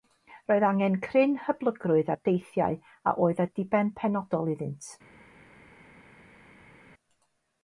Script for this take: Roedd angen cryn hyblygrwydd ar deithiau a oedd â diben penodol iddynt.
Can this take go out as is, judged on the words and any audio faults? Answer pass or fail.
pass